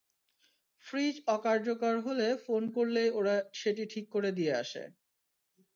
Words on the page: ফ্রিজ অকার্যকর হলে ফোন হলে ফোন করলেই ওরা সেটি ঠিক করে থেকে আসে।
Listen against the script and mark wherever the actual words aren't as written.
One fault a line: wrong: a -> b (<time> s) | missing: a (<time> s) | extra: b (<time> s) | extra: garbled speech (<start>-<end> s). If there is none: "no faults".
missing: হলে ফোন (2.6 s)
wrong: থেকে -> দিয়ে (4.3 s)